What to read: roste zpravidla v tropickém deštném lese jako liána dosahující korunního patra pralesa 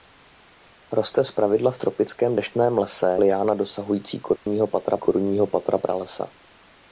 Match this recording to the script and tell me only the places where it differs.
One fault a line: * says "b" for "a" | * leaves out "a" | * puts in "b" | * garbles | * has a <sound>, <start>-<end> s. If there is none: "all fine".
* leaves out "jako"
* has a dropout, 4.4-4.5 s
* puts in "korunního patra"